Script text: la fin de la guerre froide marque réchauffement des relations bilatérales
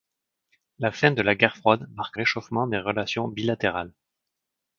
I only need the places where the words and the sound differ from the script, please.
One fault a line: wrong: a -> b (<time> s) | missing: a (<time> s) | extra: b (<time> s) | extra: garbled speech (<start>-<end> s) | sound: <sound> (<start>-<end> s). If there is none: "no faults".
no faults